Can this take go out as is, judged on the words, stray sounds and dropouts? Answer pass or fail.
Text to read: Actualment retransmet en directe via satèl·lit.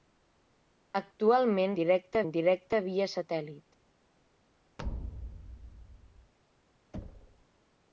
fail